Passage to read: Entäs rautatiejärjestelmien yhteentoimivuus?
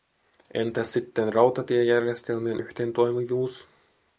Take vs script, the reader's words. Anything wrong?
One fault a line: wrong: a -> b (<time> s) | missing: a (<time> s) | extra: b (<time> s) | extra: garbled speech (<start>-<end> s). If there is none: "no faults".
extra: sitten (0.9 s)